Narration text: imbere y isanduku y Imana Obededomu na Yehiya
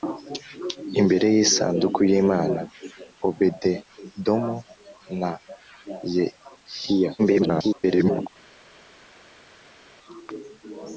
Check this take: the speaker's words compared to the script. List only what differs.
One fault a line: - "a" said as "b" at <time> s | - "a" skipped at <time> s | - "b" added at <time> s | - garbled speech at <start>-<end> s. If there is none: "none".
- garbled speech at 7.2-8.3 s